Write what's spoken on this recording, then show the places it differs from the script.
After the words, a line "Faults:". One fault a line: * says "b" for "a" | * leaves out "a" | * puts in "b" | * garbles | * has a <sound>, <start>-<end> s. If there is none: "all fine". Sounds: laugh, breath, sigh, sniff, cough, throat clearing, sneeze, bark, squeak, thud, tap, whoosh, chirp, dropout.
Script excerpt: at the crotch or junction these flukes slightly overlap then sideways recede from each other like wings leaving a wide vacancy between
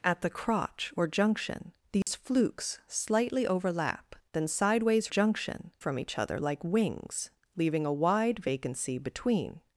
at the crotch or junction these flukes slightly overlap then sideways junction from each other like wings leaving a wide vacancy between
Faults:
* has a dropout, 2.0-2.1 s
* says "junction" for "recede"